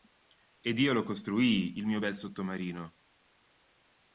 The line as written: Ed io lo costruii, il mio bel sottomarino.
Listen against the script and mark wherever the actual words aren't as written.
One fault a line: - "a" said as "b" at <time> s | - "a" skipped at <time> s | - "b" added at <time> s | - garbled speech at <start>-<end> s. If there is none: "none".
none